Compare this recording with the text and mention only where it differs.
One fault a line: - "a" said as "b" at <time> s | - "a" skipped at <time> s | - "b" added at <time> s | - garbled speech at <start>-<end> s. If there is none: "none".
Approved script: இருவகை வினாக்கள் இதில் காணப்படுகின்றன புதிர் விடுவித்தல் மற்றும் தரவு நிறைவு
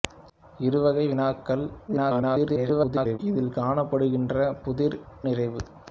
- garbled speech at 1.9-3.2 s
- "விடுவித்தல் மற்றும் தரவு" skipped at 5.0 s